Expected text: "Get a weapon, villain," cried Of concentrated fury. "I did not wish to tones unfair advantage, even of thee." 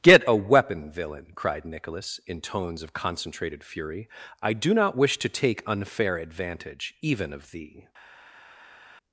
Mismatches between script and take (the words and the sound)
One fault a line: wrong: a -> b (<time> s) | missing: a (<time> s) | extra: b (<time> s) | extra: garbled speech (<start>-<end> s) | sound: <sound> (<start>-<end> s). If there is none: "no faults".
extra: Nicholas in tones (1.6 s)
wrong: did -> do (4.5 s)
wrong: tones -> take (5.3 s)